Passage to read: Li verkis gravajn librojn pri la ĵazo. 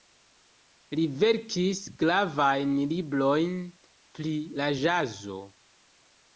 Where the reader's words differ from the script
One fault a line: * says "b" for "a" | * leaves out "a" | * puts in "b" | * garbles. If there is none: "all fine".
all fine